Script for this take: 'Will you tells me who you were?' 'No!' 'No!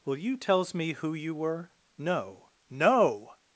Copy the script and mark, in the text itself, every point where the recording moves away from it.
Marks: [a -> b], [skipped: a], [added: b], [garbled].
'Will you tells me who you were?' 'No!' 'No!